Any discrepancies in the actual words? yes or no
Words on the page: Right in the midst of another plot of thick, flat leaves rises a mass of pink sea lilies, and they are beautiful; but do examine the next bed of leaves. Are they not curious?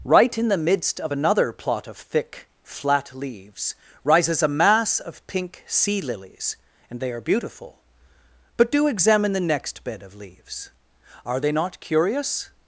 no